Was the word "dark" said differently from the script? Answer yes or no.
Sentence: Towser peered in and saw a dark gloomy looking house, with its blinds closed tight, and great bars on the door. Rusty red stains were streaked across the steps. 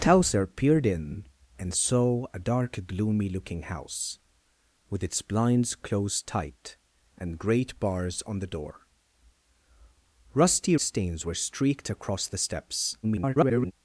no